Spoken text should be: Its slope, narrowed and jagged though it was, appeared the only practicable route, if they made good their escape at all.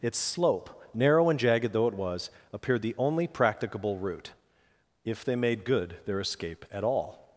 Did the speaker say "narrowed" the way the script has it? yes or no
no